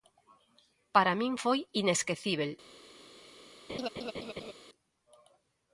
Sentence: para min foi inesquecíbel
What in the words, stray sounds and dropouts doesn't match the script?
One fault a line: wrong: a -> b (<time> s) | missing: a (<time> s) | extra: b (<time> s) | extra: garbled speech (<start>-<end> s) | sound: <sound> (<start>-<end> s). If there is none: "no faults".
sound: laugh (3.7-4.5 s)